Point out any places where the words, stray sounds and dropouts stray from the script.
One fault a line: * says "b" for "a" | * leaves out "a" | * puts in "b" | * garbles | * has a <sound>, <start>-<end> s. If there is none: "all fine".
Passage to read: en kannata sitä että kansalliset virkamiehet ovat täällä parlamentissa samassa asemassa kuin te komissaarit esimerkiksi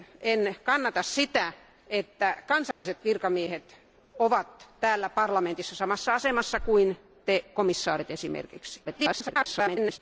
* has a dropout, 2.7-2.9 s
* garbles